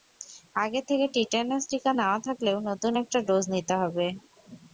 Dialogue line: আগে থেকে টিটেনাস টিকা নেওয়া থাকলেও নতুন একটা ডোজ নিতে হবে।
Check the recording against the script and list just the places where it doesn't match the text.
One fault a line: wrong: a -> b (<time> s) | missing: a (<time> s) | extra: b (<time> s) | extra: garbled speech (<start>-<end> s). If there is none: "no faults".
no faults